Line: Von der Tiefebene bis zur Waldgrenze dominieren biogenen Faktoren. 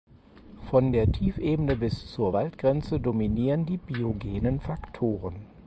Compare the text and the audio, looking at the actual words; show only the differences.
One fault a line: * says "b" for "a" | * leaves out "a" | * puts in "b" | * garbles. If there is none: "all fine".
* puts in "die"